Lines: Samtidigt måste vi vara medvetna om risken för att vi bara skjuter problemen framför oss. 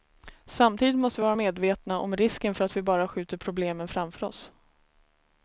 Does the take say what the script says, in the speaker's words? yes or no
yes